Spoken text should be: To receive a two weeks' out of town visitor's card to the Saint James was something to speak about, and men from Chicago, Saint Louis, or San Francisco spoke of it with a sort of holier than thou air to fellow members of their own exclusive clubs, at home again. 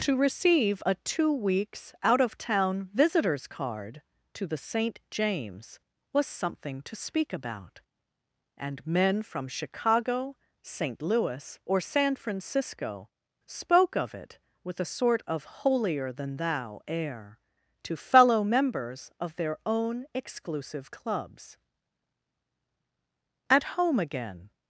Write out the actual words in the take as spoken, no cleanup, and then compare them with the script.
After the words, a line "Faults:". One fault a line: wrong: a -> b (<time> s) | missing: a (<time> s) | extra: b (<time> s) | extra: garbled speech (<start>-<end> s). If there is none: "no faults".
To receive a two weeks' out of town visitor's card to the Saint James was something to speak about, and men from Chicago, Saint Louis, or San Francisco spoke of it with a sort of holier than thou air to fellow members of their own exclusive clubs, at home again.
Faults:
no faults